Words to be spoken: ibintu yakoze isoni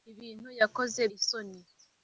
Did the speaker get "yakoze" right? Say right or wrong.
right